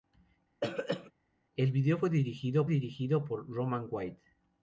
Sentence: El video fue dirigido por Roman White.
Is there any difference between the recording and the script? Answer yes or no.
yes